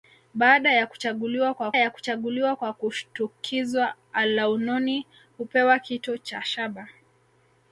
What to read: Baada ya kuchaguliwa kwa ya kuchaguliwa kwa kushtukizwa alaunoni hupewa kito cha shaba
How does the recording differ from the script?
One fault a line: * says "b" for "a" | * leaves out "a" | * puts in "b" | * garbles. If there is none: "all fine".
all fine